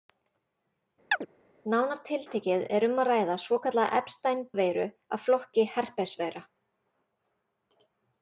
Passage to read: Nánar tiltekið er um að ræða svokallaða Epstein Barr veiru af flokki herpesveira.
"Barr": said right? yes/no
no